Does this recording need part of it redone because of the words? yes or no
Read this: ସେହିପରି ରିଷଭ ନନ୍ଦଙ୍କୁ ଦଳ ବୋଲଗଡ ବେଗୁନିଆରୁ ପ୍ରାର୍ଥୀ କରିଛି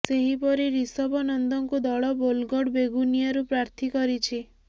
no